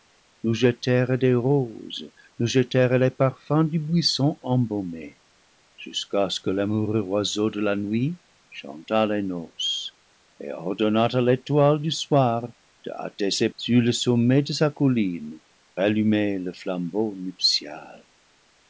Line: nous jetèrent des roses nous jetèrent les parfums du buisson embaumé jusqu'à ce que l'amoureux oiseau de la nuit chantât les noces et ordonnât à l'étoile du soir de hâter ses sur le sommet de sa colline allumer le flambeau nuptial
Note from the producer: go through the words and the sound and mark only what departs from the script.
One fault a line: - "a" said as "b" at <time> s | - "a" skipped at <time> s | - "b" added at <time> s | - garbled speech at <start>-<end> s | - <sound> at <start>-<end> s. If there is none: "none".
none